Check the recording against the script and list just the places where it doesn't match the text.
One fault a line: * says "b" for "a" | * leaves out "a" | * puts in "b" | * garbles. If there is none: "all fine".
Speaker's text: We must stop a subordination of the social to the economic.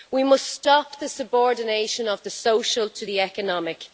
* says "the" for "a"